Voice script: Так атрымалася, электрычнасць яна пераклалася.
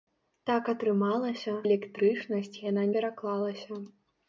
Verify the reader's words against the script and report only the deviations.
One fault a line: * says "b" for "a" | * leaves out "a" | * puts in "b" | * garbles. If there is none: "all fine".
all fine